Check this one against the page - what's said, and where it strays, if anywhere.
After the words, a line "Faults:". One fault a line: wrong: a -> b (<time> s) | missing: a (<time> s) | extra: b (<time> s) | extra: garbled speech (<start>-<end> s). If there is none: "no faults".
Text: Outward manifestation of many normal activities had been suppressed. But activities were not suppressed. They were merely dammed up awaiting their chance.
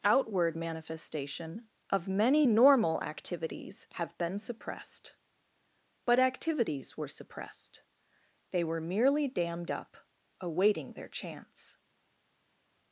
Outward manifestation of many normal activities have been suppressed. But activities were suppressed. They were merely dammed up awaiting their chance.
Faults:
wrong: had -> have (3.9 s)
missing: not (7.1 s)